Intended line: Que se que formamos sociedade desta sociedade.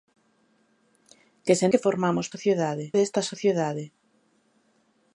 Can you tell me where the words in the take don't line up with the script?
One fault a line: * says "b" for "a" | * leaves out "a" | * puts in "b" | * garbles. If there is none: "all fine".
all fine